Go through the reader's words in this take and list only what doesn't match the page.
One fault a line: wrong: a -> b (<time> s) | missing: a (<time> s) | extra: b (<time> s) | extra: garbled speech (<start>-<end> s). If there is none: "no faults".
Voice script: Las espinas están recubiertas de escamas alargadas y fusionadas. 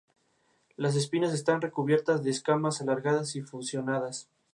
no faults